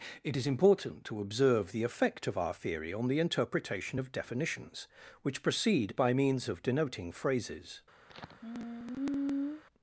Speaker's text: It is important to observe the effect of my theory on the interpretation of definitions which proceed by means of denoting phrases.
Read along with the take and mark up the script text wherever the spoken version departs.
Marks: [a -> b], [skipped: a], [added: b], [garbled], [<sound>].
It is important to observe the effect of [my -> our] theory on the interpretation of definitions which proceed by means of denoting phrases. [sigh]